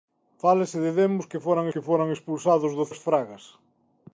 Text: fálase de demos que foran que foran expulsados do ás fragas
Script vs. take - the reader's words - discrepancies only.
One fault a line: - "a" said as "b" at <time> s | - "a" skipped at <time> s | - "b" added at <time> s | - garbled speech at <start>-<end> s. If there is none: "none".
none